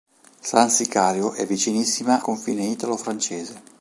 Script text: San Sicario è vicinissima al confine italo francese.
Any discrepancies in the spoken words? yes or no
yes